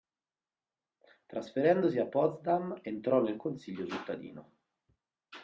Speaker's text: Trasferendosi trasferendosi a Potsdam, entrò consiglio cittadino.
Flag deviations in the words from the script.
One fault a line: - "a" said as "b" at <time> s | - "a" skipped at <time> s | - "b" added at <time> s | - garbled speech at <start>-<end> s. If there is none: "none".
- "trasferendosi" skipped at 2.0 s
- "nel" added at 3.2 s